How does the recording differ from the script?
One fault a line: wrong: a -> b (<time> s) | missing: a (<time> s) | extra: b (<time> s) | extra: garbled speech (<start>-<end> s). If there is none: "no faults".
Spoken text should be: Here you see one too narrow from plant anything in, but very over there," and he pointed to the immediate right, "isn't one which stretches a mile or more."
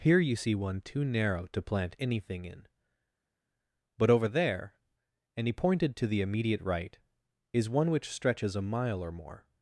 wrong: from -> to (1.5 s)
missing: very (4.1 s)
wrong: isn't -> is (7.5 s)